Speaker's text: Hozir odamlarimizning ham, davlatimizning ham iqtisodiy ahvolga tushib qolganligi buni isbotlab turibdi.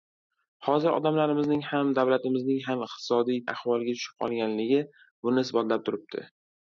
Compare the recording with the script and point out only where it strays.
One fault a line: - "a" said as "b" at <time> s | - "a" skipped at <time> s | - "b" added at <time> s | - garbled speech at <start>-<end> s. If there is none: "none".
none